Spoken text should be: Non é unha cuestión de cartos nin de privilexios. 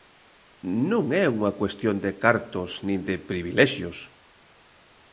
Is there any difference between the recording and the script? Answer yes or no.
no